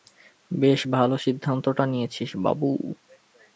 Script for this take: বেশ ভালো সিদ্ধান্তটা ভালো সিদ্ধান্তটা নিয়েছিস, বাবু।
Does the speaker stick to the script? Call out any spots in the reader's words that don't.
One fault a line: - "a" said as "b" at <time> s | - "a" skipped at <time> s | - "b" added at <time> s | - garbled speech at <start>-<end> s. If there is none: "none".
- "ভালো সিদ্ধান্তটা" skipped at 1.8 s